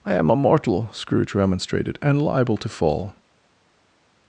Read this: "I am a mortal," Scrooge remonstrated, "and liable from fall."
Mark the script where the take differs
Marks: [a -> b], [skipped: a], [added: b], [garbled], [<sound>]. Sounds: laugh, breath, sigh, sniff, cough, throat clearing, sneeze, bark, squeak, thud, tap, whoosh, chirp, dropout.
"I am a mortal," Scrooge remonstrated, "and liable [from -> to] fall."